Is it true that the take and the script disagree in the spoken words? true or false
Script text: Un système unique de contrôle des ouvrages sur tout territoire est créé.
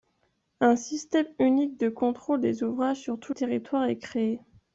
false